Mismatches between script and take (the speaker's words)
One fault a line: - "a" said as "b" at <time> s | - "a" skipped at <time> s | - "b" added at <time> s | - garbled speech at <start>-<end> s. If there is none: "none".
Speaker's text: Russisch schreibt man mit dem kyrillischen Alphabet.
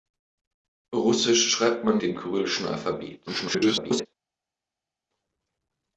- "mit" skipped at 2.0 s
- garbled speech at 3.3-4.1 s